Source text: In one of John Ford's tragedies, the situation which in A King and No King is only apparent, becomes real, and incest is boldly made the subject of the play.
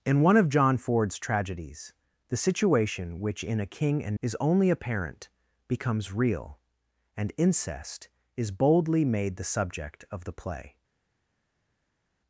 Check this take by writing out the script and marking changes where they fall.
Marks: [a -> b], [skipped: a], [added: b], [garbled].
In one of John Ford's tragedies, the situation which in A King and [skipped: No King] is only apparent, becomes real, and incest is boldly made the subject of the play.